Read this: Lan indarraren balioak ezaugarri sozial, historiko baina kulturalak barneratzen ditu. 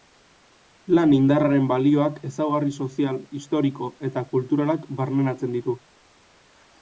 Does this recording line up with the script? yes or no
no